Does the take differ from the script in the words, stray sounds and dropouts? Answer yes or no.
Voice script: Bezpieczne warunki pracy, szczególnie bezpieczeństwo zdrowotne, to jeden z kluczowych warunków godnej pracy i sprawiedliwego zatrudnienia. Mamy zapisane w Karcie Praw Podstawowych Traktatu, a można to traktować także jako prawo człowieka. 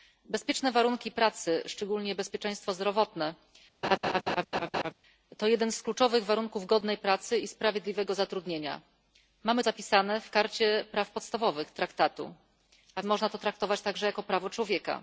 yes